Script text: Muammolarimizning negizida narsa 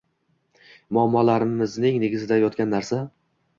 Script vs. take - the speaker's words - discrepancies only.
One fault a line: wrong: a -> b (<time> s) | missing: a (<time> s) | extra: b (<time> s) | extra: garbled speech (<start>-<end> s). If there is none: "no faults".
extra: yotgan (2.5 s)